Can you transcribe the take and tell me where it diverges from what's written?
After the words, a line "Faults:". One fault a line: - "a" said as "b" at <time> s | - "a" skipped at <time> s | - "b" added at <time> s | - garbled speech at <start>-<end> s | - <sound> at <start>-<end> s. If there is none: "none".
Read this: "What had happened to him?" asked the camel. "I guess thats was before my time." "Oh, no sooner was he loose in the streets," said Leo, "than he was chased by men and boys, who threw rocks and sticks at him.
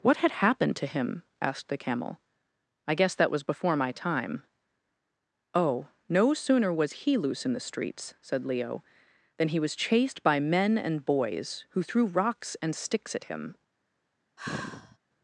"What had happened to him?" asked the camel. "I guess that was before my time." "Oh, no sooner was he loose in the streets," said Leo, "than he was chased by men and boys, who threw rocks and sticks at him.
Faults:
- "thats" said as "that" at 3.1 s
- sigh at 14.4-15.0 s